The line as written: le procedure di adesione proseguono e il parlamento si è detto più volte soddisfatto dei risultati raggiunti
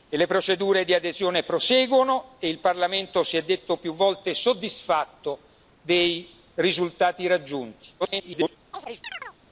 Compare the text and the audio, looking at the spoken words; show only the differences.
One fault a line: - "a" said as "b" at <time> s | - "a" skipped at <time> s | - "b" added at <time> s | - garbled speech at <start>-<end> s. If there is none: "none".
- garbled speech at 8.0-8.6 s